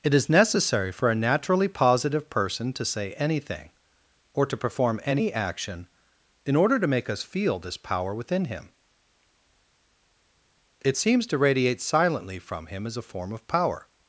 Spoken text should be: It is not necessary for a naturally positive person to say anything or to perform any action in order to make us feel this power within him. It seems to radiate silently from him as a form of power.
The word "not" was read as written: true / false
false